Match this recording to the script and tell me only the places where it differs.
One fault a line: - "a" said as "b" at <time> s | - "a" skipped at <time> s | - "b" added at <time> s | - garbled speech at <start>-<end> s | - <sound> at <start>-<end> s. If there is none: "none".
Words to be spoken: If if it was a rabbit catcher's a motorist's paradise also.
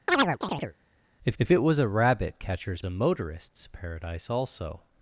- chirp at 0.1-0.8 s